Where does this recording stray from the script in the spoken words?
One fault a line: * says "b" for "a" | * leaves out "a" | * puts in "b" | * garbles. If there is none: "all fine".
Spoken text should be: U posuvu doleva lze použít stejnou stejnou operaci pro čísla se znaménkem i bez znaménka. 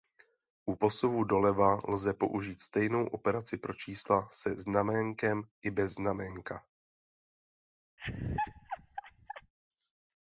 * leaves out "stejnou"